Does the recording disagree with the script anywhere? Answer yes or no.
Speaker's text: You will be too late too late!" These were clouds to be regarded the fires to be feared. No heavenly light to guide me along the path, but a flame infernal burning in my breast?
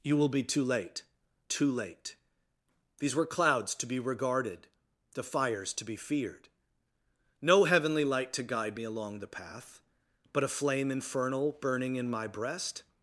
no